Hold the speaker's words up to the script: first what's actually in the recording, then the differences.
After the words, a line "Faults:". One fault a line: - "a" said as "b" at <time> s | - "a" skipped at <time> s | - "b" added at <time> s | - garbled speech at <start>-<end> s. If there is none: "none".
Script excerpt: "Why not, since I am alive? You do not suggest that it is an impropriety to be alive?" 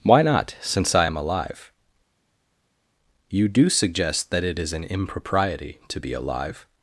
"Why not, since I am alive? You do suggest that it is an impropriety to be alive?"
Faults:
- "not" skipped at 3.7 s